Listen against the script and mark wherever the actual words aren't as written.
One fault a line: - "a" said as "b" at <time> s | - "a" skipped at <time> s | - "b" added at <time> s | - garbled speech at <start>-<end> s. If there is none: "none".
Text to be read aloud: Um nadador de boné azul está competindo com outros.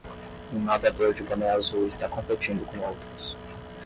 none